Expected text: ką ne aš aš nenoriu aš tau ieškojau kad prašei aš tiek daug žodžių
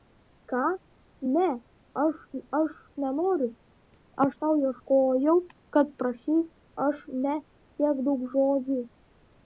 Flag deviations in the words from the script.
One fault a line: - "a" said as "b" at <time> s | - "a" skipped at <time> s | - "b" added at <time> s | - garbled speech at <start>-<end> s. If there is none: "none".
- "ne" added at 7.2 s